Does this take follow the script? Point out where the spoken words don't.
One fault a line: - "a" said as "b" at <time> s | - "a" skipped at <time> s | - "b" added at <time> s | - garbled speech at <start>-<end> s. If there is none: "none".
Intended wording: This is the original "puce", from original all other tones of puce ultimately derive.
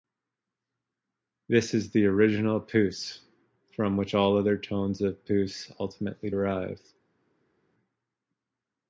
- "original" said as "which" at 4.0 s